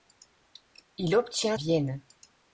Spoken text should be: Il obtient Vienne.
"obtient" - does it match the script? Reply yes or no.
yes